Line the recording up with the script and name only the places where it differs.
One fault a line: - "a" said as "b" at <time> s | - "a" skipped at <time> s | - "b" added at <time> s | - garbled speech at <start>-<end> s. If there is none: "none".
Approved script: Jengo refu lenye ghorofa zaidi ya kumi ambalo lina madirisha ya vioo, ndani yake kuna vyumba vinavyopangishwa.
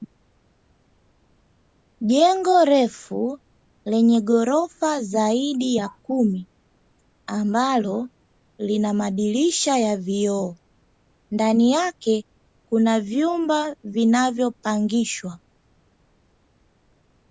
none